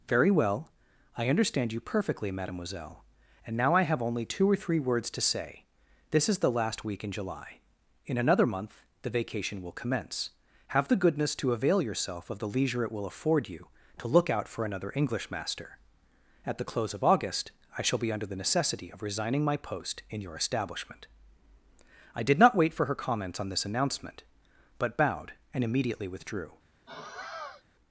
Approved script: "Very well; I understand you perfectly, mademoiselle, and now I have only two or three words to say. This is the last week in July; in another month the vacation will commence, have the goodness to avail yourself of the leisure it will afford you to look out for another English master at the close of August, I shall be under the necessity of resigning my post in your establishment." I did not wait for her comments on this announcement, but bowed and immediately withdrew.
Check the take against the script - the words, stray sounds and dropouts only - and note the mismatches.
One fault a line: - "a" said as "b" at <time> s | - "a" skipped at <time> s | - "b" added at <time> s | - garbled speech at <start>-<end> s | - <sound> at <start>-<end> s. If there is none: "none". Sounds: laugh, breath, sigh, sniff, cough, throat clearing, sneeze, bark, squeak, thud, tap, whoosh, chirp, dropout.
- sigh at 26.9-27.6 s